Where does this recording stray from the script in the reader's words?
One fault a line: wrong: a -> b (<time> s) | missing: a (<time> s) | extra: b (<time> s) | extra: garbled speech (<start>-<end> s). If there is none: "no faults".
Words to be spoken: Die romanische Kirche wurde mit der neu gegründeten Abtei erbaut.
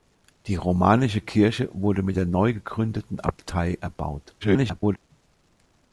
extra: garbled speech (4.4-5.0 s)